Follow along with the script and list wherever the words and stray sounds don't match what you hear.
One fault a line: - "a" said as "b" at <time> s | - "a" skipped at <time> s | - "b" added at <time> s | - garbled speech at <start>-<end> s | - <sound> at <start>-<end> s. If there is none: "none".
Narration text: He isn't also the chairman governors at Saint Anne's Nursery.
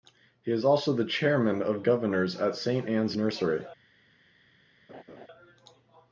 - "isn't" said as "is" at 0.5 s
- "of" added at 1.6 s
- laugh at 4.9-5.3 s